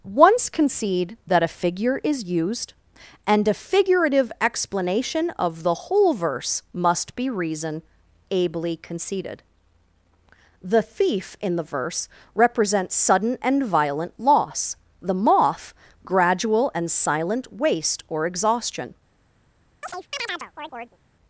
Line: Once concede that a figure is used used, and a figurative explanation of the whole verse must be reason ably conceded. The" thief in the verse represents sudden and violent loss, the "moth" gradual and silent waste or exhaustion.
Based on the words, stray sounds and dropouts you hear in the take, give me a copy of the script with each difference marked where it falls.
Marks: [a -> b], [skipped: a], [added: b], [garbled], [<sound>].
Once concede that a figure is used [skipped: used,] and a figurative explanation of the whole verse must be reason ably conceded. The" thief in the verse represents sudden and violent loss, the "moth" gradual and silent waste or exhaustion. [chirp]